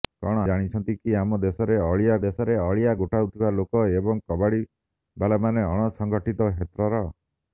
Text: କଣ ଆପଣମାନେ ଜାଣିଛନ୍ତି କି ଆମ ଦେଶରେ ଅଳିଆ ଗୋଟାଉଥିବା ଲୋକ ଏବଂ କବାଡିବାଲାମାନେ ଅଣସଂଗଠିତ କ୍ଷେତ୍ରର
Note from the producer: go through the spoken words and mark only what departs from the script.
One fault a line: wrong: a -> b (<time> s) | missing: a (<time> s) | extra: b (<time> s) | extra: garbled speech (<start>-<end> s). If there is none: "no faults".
missing: ଆପଣମାନେ (0.4 s)
extra: ଦେଶରେ ଅଳିଆ (2.3 s)